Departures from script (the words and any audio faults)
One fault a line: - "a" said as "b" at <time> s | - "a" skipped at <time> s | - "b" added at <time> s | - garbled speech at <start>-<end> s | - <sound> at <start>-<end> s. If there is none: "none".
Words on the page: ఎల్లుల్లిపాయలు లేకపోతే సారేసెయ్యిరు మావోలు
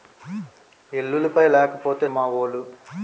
- "సారేసెయ్యిరు" skipped at 2.0 s